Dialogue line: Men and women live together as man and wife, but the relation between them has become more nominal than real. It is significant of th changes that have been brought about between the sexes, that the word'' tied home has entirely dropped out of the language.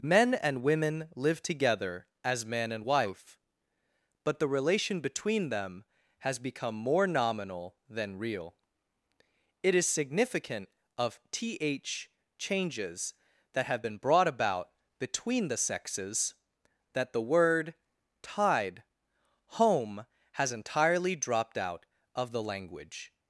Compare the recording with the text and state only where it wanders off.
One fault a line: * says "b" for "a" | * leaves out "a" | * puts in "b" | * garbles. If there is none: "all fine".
all fine